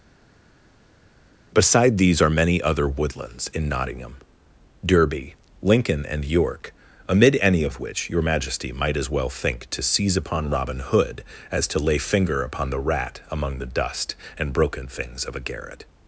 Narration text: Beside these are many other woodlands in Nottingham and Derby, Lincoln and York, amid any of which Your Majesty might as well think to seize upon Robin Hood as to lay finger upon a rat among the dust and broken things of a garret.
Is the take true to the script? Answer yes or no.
no